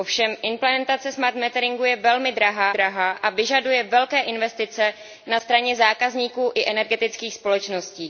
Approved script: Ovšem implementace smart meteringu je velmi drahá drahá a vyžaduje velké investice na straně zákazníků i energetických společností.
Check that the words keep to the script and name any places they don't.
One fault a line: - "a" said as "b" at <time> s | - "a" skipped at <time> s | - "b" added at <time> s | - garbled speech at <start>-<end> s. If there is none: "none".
none